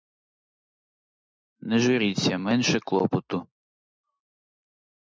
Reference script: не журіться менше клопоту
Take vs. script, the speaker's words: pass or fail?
pass